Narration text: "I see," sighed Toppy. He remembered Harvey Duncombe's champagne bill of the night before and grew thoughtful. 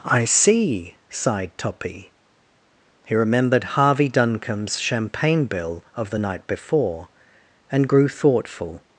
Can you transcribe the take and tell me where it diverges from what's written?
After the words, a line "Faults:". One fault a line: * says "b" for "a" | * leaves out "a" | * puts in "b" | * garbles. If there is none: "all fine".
"I see," sighed Toppy. He remembered Harvey Duncombe's champagne bill of the night before and grew thoughtful.
Faults:
all fine